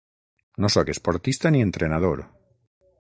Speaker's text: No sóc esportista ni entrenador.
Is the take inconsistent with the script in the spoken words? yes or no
no